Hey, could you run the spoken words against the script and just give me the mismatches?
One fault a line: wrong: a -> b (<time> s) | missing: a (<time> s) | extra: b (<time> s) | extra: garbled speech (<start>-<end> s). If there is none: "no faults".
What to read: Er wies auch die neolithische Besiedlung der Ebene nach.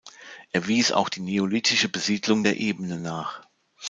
no faults